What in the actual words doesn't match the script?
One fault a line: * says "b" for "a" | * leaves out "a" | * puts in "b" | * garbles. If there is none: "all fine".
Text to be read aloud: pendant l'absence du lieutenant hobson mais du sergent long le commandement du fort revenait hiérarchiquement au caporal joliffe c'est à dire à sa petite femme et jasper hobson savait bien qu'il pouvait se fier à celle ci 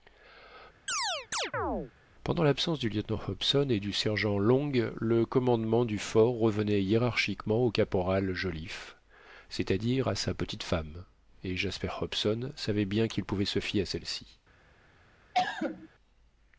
* says "et" for "mais"